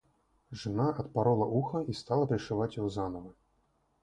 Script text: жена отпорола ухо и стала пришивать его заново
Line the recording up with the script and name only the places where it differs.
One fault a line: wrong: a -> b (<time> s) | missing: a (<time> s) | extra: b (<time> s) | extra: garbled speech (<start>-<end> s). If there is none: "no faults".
no faults